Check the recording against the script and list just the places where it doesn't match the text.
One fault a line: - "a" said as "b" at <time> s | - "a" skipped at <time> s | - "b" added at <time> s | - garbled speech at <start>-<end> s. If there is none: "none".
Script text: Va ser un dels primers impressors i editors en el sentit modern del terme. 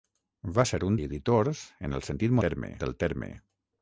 - "dels primers impressors" skipped at 1.0 s
- "modern" said as "terme" at 2.5 s